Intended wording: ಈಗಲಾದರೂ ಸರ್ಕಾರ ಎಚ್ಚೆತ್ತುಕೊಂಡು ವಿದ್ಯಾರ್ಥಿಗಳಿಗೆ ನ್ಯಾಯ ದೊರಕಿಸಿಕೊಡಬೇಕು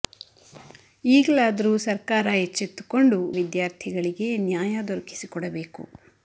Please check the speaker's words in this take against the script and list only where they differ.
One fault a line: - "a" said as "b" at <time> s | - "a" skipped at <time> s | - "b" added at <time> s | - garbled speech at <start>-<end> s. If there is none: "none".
none